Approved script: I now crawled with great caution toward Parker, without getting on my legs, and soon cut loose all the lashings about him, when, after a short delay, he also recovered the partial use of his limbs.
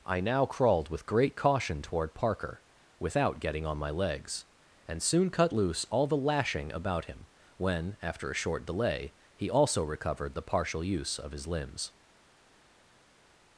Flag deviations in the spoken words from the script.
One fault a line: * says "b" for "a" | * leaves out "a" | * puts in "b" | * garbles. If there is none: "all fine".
* says "lashing" for "lashings"